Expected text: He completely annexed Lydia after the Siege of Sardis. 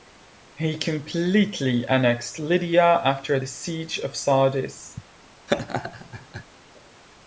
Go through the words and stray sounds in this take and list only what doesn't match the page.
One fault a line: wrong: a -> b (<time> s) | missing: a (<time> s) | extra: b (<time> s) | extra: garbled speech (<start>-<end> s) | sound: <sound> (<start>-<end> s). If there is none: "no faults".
sound: laugh (5.5-6.4 s)